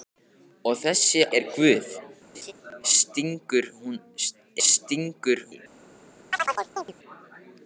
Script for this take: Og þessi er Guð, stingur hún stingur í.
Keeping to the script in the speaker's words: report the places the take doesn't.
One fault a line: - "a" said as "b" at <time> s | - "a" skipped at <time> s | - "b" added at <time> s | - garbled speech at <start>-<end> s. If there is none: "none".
none